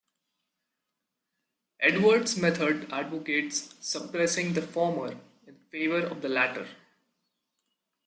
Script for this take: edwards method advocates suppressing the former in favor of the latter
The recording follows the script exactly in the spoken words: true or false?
true